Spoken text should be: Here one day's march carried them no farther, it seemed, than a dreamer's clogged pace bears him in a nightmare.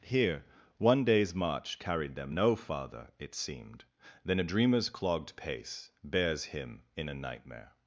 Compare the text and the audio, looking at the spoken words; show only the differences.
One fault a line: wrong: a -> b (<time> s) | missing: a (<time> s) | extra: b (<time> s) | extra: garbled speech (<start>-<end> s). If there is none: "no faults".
no faults